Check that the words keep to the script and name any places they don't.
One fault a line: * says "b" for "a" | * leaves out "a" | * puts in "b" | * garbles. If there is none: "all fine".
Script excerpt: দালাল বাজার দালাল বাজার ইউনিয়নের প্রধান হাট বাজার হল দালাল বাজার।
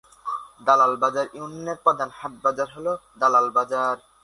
* leaves out "দালাল বাজার"